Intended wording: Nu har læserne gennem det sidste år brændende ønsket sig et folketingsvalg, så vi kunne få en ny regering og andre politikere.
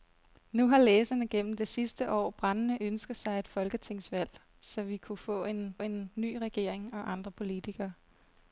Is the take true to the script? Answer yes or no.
no